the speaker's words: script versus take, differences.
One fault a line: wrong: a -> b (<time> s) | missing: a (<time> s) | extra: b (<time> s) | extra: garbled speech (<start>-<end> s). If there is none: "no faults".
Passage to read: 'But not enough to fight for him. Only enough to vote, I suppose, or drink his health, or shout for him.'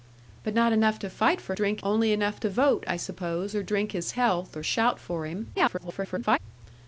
wrong: him -> drink (1.5 s)
extra: garbled speech (5.5-6.4 s)